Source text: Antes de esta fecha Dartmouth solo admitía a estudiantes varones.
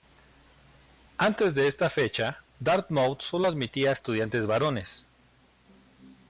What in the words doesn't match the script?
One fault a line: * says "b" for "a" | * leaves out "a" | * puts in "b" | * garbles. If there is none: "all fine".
all fine